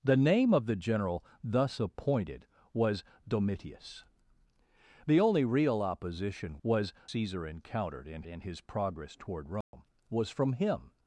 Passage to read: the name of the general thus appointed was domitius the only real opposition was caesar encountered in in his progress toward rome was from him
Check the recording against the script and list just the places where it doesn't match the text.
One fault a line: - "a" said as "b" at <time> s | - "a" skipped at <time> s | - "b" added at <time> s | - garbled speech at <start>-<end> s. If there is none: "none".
none